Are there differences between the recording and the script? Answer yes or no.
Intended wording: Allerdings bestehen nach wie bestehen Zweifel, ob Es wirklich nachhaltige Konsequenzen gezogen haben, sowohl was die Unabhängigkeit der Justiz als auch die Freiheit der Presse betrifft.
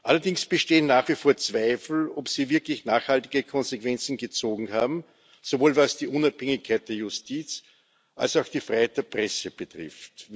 yes